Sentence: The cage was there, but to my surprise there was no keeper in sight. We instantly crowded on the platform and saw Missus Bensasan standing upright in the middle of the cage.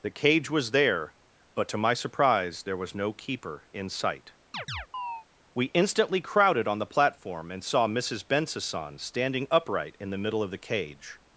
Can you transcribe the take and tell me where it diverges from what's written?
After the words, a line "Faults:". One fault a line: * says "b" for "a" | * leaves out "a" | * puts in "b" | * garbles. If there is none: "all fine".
The cage was there, but to my surprise there was no keeper in sight. We instantly crowded on the platform and saw Missus Bensasan standing upright in the middle of the cage.
Faults:
all fine